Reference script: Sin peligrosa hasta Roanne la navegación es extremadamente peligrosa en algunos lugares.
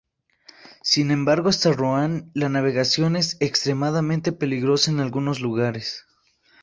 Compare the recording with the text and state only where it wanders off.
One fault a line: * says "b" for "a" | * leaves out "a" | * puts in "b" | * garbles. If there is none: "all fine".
* says "embargo" for "peligrosa"